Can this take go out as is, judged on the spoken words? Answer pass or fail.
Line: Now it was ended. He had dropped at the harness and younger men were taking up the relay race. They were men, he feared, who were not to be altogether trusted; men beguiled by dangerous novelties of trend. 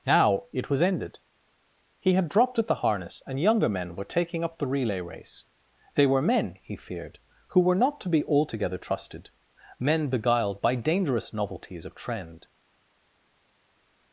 pass